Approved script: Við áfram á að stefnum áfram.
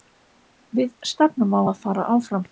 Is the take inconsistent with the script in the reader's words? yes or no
yes